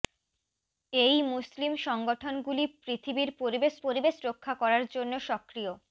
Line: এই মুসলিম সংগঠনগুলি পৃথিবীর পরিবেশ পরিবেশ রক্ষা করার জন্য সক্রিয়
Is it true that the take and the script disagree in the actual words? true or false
false